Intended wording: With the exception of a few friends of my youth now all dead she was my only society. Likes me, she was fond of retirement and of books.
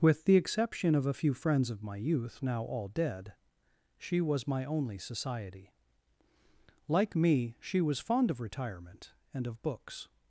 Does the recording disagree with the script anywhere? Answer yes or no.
yes